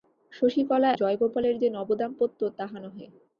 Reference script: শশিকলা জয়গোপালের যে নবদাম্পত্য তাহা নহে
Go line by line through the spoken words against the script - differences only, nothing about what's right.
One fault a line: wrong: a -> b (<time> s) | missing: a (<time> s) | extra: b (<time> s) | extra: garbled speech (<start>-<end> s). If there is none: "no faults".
no faults